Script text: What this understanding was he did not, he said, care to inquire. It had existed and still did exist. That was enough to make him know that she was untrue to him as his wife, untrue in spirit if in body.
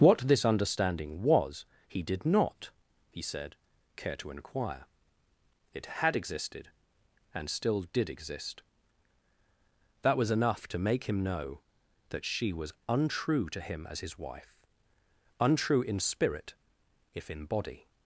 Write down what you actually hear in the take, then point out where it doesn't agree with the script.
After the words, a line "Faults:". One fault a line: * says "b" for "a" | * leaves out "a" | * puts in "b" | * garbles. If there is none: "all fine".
What this understanding was he did not, he said, care to inquire. It had existed and still did exist. That was enough to make him know that she was untrue to him as his wife, untrue in spirit if in body.
Faults:
all fine